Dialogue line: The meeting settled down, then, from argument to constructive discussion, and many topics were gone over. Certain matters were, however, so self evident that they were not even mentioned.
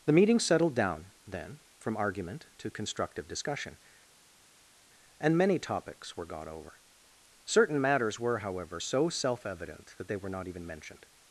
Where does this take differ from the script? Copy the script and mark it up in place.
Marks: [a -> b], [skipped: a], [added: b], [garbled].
The meeting settled down, then, from argument to constructive discussion, and many topics were [gone -> got] over. Certain matters were, however, so self evident that they were not even mentioned.